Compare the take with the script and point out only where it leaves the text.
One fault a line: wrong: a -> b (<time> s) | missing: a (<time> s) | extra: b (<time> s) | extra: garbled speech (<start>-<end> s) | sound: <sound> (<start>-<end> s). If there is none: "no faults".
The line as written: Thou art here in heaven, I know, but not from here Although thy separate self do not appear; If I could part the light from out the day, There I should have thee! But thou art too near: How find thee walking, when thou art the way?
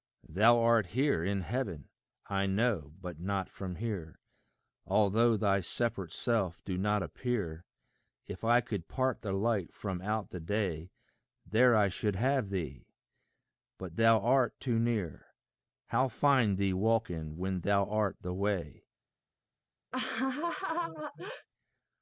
sound: laugh (19.9-21.5 s)